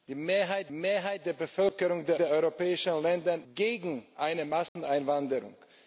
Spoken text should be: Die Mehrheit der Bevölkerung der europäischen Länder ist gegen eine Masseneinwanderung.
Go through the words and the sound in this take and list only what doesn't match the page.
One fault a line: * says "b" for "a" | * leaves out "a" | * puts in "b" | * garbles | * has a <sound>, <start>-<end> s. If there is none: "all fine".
* puts in "Mehrheit"
* puts in "der"
* leaves out "ist"
* has a dropout, 4.7-4.8 s